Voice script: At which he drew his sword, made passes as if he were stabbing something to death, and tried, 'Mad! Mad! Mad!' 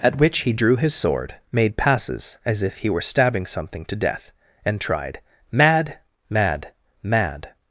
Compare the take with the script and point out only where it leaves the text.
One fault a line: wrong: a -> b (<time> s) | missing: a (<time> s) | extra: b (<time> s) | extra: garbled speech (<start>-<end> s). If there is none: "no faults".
no faults